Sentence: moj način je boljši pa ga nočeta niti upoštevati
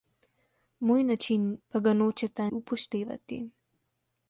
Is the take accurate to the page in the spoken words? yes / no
no